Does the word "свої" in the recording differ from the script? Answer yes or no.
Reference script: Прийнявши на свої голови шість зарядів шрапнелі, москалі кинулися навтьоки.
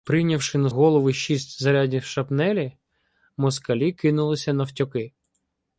yes